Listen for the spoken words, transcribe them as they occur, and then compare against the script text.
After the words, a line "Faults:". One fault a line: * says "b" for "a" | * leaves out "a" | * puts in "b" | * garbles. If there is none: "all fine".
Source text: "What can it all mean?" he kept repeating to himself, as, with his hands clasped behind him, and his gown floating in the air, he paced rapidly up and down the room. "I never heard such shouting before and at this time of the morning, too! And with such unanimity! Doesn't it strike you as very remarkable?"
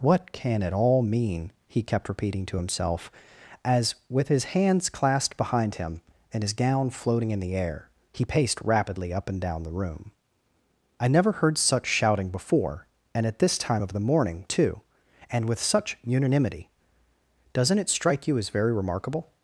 "What can it all mean?" he kept repeating to himself, as, with his hands clasped behind him, and his gown floating in the air, he paced rapidly up and down the room. "I never heard such shouting before and at this time of the morning, too! And with such unanimity! Doesn't it strike you as very remarkable?"
Faults:
all fine